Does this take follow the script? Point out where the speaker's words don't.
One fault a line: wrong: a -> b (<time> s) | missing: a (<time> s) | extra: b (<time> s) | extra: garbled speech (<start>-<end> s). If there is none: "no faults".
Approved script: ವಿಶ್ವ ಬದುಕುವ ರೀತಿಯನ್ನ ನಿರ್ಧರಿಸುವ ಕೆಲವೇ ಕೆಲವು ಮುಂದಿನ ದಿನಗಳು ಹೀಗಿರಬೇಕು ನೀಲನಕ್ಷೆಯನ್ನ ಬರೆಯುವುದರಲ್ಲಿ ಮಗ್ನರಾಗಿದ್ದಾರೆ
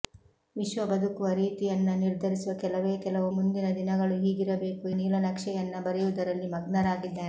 no faults